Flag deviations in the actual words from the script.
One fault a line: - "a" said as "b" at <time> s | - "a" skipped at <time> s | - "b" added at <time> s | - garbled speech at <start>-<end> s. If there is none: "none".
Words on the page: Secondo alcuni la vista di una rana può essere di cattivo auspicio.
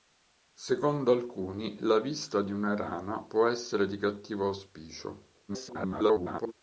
- garbled speech at 5.5-6.5 s